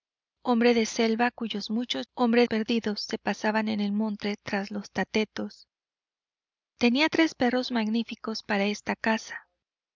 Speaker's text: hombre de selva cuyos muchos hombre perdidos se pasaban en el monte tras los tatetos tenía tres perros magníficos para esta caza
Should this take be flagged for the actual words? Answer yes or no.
no